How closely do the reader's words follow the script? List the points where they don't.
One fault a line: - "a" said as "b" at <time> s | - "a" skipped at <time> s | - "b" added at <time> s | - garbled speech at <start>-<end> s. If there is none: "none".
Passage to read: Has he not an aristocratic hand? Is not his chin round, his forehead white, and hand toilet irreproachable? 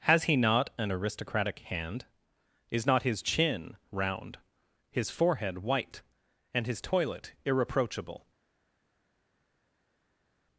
- "hand" said as "his" at 6.7 s